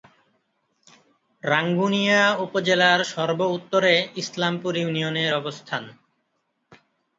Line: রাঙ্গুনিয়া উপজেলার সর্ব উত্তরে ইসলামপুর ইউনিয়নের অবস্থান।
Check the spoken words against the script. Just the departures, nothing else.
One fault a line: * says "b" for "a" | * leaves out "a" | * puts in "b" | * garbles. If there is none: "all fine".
all fine